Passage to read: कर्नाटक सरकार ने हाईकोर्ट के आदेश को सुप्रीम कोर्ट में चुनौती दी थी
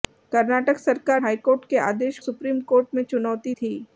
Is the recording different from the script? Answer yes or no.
yes